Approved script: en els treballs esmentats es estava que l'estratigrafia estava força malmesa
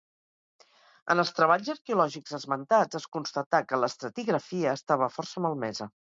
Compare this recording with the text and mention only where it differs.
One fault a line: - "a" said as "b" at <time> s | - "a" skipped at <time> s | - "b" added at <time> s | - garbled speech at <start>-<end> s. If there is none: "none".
- "arqueològics" added at 1.7 s
- "estava" said as "constatà" at 3.2 s